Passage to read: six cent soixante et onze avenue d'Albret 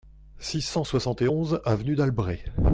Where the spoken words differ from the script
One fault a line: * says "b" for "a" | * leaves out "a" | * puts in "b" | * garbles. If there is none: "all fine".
all fine